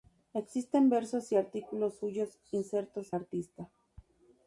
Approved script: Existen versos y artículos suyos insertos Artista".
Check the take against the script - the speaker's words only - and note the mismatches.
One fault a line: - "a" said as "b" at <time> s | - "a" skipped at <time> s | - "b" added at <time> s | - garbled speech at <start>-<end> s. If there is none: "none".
none